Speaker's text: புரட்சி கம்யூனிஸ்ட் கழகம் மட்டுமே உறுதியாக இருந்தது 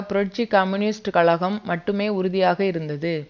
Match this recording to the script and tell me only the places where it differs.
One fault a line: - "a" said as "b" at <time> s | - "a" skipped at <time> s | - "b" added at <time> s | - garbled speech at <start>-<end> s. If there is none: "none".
none